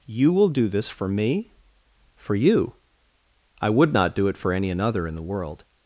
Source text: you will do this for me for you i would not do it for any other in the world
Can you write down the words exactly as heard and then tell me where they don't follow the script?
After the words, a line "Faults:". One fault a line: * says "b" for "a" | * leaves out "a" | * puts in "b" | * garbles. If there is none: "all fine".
you will do this for me for you i would not do it for any another in the world
Faults:
* says "another" for "other"